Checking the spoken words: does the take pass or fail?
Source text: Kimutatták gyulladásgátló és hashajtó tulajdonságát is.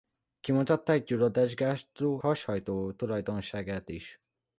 fail